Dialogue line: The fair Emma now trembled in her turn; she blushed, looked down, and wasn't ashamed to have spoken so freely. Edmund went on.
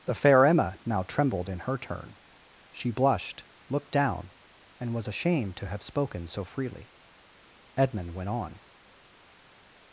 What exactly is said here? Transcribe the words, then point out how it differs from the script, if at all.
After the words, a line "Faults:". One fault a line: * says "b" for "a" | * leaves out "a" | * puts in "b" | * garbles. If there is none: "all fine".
The fair Emma now trembled in her turn; she blushed, looked down, and was ashamed to have spoken so freely. Edmund went on.
Faults:
* says "was" for "wasn't"